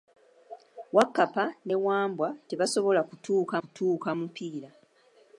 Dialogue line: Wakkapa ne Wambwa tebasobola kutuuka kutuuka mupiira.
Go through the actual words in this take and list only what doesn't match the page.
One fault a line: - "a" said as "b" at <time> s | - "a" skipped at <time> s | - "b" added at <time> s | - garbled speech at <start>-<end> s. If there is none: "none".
none